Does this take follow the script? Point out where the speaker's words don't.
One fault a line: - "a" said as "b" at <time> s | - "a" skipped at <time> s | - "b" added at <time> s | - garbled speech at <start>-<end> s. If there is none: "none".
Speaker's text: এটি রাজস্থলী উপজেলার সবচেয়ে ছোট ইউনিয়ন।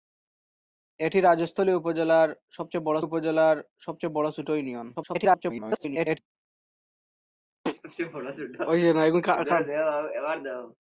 - "উপজেলার সবচেয়ে" added at 3.0 s
- garbled speech at 4.9-6.2 s